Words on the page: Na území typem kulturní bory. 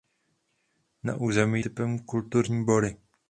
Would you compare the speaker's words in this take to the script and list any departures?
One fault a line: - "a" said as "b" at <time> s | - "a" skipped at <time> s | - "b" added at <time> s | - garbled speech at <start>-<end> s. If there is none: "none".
none